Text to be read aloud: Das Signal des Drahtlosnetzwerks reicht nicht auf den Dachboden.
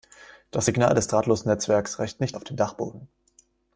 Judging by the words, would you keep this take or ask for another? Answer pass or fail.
pass